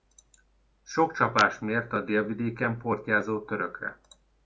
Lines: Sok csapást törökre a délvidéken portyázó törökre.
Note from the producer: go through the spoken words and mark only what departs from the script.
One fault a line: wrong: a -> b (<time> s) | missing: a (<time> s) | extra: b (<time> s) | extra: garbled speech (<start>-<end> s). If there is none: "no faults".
wrong: törökre -> mért (1.6 s)